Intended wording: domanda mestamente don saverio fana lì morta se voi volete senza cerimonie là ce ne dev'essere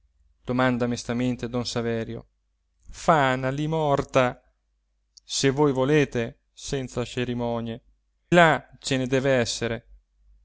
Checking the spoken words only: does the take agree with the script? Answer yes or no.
yes